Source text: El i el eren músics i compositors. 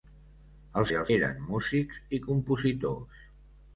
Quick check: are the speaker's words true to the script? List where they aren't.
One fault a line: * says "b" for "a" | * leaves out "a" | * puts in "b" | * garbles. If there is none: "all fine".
all fine